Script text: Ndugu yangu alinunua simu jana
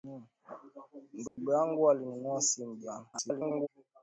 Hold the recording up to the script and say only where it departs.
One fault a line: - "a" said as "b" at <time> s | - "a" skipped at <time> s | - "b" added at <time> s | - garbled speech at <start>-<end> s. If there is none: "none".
- garbled speech at 3.1-3.7 s